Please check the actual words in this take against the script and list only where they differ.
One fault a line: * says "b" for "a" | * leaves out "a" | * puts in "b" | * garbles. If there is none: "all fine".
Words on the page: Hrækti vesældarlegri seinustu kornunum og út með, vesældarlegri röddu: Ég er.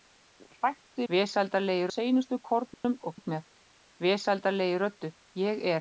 all fine